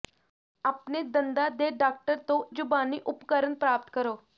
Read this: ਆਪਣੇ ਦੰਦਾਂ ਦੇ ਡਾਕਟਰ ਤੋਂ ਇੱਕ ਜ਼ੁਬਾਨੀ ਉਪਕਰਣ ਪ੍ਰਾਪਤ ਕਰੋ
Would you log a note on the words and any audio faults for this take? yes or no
yes